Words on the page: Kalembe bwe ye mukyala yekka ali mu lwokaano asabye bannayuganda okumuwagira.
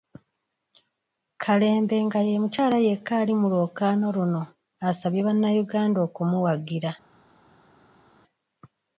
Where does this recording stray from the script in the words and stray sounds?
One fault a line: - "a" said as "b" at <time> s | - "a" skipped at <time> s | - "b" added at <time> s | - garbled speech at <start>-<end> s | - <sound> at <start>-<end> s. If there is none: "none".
- "bwe" said as "nga" at 2.0 s
- "luno" added at 4.2 s